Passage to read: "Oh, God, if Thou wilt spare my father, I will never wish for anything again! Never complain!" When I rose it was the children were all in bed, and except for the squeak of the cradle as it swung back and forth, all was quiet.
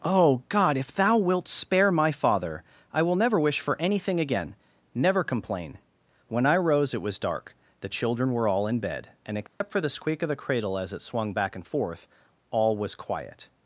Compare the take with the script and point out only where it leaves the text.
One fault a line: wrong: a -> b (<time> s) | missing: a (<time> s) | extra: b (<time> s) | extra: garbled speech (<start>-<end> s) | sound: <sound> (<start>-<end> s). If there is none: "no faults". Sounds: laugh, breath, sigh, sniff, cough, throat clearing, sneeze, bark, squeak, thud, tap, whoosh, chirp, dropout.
extra: dark (7.2 s)
sound: dropout (9.5-9.6 s)